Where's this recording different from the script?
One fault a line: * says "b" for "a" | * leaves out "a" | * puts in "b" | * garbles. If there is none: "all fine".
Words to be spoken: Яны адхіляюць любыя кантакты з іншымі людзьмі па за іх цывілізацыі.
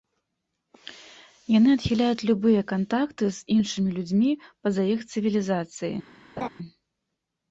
all fine